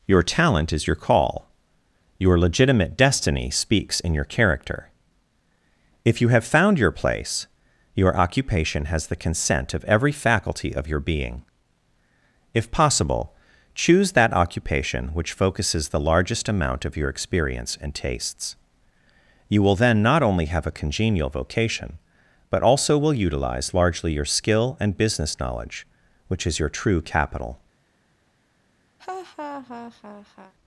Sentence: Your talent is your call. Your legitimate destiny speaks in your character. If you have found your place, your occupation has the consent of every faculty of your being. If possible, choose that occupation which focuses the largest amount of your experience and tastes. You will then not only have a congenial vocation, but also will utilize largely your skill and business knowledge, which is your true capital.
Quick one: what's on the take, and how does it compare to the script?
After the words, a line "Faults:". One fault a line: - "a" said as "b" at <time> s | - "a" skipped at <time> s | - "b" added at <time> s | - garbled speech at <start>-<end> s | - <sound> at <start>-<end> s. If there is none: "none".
Your talent is your call. Your legitimate destiny speaks in your character. If you have found your place, your occupation has the consent of every faculty of your being. If possible, choose that occupation which focuses the largest amount of your experience and tastes. You will then not only have a congenial vocation, but also will utilize largely your skill and business knowledge, which is your true capital.
Faults:
- laugh at 29.0-30.5 s